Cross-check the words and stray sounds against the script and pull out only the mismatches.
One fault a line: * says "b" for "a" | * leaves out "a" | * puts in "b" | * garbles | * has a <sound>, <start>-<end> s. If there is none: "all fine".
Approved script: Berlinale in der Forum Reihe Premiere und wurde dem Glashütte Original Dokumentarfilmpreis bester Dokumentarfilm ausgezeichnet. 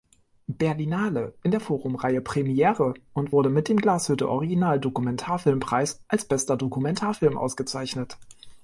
* puts in "mit"
* puts in "als"